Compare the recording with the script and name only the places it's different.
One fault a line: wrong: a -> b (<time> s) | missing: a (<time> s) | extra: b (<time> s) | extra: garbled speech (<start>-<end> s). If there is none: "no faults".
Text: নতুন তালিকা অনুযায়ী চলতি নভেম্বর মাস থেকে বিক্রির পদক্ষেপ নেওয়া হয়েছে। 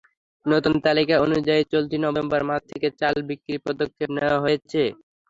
extra: চাল (3.0 s)